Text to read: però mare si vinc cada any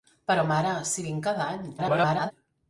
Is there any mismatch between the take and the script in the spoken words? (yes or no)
yes